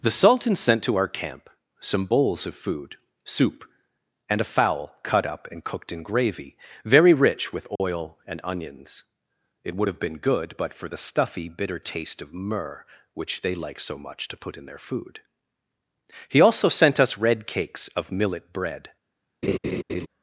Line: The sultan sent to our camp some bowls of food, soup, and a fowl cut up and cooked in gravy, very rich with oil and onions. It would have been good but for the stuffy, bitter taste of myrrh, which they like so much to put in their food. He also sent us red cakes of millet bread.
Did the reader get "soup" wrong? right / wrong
right